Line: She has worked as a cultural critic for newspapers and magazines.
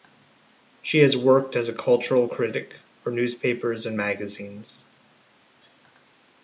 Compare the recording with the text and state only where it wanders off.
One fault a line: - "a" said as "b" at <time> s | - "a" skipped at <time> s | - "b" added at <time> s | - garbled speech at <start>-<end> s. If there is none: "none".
none